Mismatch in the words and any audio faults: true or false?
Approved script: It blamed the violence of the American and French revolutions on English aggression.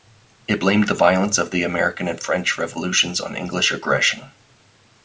false